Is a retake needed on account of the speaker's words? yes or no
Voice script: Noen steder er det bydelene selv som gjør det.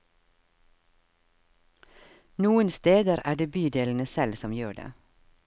no